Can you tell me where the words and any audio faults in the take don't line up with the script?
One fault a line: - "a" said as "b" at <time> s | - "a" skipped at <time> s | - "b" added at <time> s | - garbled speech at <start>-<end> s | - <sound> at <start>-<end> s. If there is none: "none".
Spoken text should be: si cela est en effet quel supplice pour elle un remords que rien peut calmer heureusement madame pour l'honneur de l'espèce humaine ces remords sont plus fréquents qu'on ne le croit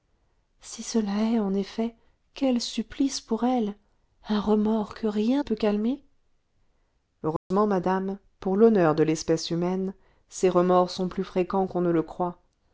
- dropout at 7.4-7.5 s